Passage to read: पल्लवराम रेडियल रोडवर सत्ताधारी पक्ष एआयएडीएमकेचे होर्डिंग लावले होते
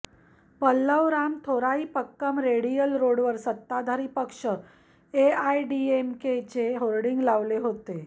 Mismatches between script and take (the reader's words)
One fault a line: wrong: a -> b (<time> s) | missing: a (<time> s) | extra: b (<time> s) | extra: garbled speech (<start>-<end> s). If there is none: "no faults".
extra: थोरइपक्कम (1.5 s)